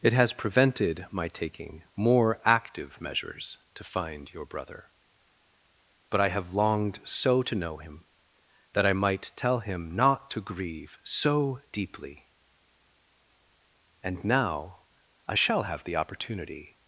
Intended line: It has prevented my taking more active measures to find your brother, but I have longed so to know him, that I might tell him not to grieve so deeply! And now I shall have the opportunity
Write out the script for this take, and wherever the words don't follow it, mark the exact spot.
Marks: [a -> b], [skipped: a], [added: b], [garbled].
It has prevented my taking more active measures to find your brother, but I have longed so to know him, that I might tell him not to grieve so deeply! And now I shall have the opportunity